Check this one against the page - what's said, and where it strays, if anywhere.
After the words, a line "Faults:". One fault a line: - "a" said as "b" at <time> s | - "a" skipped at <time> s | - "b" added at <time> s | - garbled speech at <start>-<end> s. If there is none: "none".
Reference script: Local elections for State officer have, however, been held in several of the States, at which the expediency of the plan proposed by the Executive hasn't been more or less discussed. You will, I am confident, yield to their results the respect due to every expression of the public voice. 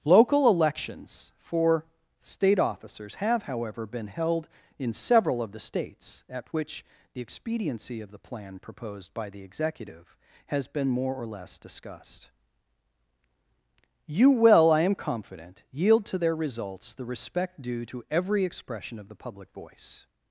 Local elections for State officers have, however, been held in several of the States, at which the expediency of the plan proposed by the Executive has been more or less discussed. You will, I am confident, yield to their results the respect due to every expression of the public voice.
Faults:
- "officer" said as "officers" at 2.6 s
- "hasn't" said as "has" at 10.5 s